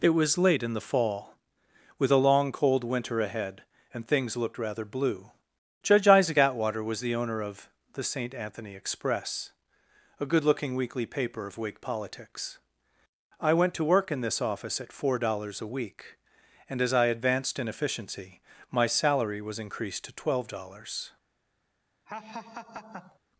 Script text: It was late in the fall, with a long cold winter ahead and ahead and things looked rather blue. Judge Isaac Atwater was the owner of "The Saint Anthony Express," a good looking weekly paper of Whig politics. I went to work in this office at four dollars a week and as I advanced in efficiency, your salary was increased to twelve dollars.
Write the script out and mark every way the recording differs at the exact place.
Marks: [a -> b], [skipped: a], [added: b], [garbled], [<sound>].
It was late in the fall, with a long cold winter ahead and [skipped: ahead and] things looked rather blue. Judge Isaac Atwater was the owner of "The Saint Anthony Express," a good looking weekly paper of Whig politics. I went to work in this office at four dollars a week and as I advanced in efficiency, [your -> my] salary was increased to twelve dollars. [laugh]